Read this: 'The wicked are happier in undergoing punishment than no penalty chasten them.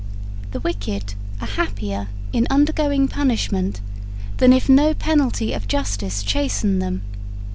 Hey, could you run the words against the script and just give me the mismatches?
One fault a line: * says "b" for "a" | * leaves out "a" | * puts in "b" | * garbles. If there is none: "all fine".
* puts in "if"
* puts in "of justice"